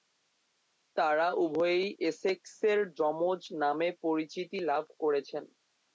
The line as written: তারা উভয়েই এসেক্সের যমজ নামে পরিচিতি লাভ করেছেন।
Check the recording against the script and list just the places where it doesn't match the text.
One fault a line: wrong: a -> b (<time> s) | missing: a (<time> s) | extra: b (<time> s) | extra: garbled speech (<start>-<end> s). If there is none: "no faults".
no faults